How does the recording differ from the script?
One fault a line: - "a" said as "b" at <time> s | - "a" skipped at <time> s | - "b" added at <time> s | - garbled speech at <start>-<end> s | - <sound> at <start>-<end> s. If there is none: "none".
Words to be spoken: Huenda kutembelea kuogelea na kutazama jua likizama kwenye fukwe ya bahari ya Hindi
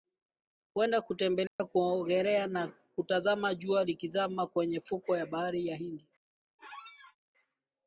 - dropout at 1.5-1.6 s
- squeak at 6.6-7.2 s